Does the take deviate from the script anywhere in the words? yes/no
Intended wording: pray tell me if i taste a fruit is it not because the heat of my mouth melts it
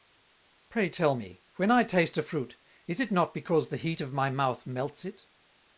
yes